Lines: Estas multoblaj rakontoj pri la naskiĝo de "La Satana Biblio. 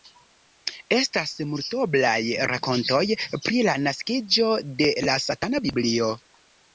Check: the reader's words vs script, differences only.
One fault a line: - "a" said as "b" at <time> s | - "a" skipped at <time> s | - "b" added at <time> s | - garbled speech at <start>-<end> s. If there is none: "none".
none